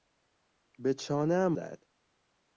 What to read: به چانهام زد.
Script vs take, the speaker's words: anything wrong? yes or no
no